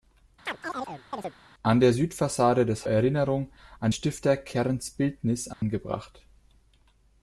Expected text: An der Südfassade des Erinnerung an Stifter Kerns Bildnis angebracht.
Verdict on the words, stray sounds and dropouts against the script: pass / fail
fail